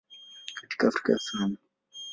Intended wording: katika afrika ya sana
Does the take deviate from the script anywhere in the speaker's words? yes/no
no